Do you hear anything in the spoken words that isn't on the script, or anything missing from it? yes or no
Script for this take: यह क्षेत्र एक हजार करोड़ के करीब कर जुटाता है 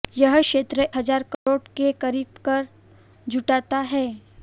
yes